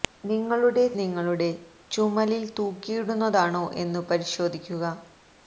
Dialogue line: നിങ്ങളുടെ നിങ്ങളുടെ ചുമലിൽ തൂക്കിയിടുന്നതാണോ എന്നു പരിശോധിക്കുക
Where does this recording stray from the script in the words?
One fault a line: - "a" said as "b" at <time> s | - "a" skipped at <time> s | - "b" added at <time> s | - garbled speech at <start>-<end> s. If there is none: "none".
none